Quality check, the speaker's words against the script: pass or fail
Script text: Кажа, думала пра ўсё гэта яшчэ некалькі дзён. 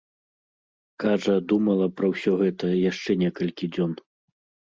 pass